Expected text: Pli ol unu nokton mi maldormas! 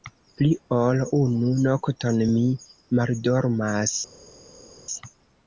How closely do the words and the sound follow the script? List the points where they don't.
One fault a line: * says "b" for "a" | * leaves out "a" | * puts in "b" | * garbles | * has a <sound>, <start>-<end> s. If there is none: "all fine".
all fine